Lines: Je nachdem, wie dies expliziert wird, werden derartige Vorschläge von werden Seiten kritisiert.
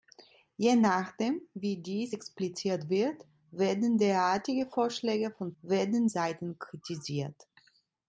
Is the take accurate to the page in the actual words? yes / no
yes